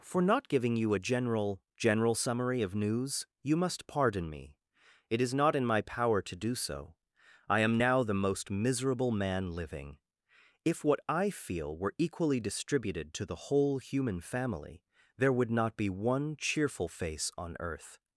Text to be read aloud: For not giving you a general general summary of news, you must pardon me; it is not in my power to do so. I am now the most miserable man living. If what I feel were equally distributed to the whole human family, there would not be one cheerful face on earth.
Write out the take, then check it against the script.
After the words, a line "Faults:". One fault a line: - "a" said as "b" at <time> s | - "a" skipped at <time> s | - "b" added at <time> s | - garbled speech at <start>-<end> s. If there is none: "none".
For not giving you a general general summary of news, you must pardon me; it is not in my power to do so. I am now the most miserable man living. If what I feel were equally distributed to the whole human family, there would not be one cheerful face on earth.
Faults:
none